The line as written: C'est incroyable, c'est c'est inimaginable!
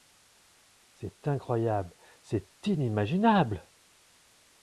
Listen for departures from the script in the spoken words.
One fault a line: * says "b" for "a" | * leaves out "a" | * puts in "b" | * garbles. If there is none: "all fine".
* leaves out "c'est"